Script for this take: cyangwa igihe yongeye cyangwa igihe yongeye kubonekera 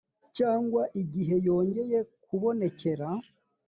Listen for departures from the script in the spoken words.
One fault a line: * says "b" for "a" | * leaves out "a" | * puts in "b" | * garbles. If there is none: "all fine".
* leaves out "cyangwa igihe yongeye"